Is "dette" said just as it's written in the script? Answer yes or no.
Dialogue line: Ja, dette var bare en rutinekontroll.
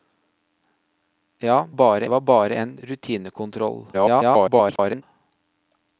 no